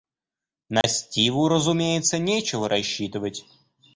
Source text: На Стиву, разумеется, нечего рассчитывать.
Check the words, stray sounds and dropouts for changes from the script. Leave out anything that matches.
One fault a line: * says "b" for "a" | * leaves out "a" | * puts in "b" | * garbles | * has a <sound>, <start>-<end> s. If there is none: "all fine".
* has a dropout, 0.8-0.8 s